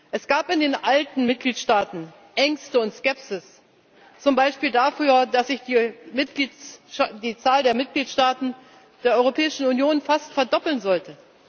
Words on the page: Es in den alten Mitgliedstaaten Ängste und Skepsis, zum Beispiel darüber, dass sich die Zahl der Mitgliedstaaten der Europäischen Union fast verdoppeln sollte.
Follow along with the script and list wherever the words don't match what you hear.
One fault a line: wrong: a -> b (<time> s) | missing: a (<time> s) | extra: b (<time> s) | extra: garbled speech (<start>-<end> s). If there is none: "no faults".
extra: gab (0.3 s)